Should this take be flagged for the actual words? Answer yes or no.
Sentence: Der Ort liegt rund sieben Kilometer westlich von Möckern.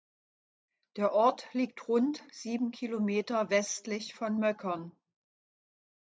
no